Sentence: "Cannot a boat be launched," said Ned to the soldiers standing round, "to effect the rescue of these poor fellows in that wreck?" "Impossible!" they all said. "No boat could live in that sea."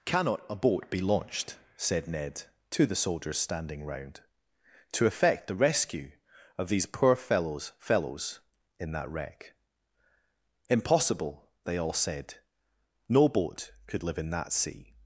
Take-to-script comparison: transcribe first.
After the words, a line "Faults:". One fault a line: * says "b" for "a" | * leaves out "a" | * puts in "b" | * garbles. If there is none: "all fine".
"Cannot a boat be launched," said Ned to the soldiers standing round, "to effect the rescue of these poor fellows fellows in that wreck?" "Impossible!" they all said. "No boat could live in that sea."
Faults:
* puts in "fellows"